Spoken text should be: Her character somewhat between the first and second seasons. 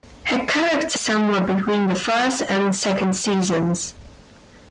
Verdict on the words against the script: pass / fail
pass